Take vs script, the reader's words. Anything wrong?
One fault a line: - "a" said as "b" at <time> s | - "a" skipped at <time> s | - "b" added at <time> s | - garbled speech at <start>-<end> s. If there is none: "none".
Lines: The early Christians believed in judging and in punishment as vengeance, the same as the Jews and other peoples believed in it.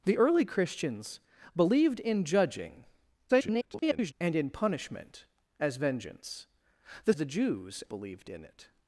- garbled speech at 3.3-4.1 s
- "same as" skipped at 7.1 s
- "and other peoples" skipped at 7.8 s